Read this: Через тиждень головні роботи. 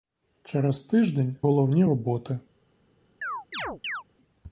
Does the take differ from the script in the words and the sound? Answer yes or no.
yes